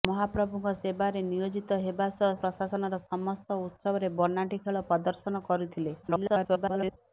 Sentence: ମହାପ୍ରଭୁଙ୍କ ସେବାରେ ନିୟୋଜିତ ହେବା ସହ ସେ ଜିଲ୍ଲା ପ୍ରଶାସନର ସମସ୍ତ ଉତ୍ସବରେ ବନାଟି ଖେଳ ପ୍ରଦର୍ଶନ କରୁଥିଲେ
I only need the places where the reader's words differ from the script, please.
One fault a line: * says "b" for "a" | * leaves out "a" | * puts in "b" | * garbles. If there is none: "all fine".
* leaves out "ସେ ଜିଲ୍ଲା"
* garbles